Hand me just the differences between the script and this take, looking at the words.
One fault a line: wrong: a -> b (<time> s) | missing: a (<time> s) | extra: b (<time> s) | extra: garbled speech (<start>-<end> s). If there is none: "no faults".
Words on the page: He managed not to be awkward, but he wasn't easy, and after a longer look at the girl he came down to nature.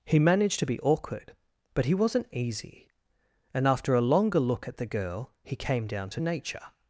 missing: not (0.6 s)